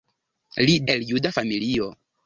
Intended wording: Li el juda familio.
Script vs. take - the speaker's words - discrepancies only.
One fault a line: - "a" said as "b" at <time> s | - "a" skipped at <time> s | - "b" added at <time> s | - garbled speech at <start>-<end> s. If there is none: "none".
none